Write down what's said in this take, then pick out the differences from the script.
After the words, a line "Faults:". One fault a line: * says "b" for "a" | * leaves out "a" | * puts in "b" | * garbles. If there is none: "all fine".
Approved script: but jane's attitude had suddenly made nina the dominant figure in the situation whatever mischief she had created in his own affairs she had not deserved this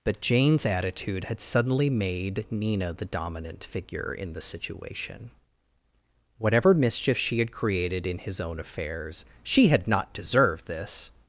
but jane's attitude had suddenly made nina the dominant figure in the situation whatever mischief she had created in his own affairs she had not deserved this
Faults:
all fine